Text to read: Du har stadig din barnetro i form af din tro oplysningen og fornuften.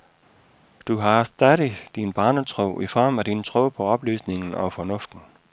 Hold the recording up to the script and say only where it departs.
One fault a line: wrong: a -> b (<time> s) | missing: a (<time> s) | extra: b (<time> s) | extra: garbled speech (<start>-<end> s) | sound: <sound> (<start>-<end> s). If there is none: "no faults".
extra: på (3.7 s)